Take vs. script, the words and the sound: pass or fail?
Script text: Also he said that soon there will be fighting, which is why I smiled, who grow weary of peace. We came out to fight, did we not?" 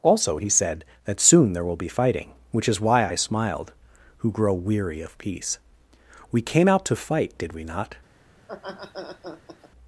fail